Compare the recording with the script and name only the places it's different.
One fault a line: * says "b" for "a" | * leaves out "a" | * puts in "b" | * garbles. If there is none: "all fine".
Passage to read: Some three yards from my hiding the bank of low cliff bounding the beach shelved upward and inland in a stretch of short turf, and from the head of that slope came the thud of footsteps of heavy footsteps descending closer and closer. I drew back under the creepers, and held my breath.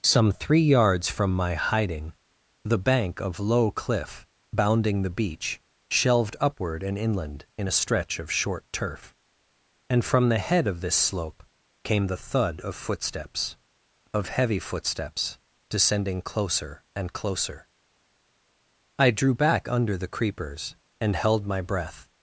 * says "this" for "that"